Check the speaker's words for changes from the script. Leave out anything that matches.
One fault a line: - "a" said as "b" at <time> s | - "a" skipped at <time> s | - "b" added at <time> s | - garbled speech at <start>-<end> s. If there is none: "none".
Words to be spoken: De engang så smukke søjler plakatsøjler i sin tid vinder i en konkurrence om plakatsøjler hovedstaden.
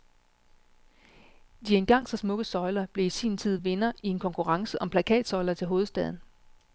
- "plakatsøjler" said as "blev" at 2.9 s
- "til" added at 5.5 s